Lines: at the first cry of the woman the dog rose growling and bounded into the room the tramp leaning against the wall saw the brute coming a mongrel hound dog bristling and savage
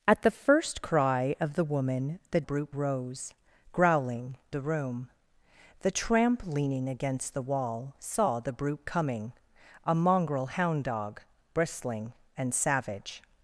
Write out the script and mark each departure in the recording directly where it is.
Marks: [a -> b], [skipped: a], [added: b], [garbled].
at the first cry of the woman the [dog -> brute] rose growling [skipped: and bounded into] the room the tramp leaning against the wall saw the brute coming a mongrel hound dog bristling and savage